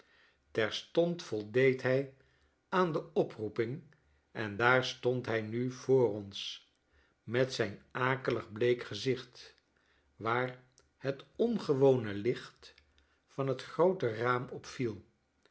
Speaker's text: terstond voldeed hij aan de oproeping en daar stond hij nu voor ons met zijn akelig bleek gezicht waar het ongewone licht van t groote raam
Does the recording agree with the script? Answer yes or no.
yes